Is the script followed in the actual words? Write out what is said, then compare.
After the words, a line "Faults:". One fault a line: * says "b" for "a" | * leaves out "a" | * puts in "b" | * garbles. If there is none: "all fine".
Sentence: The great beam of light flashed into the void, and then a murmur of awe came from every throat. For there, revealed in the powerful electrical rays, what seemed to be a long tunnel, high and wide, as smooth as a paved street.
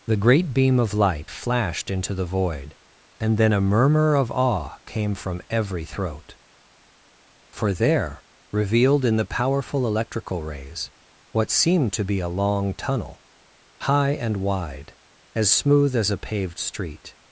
The great beam of light flashed into the void, and then a murmur of awe came from every throat. For there, revealed in the powerful electrical rays, what seemed to be a long tunnel, high and wide, as smooth as a paved street.
Faults:
all fine